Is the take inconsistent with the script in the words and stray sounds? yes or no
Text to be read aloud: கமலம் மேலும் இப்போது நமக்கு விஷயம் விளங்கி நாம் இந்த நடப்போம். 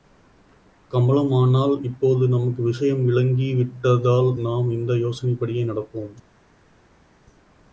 yes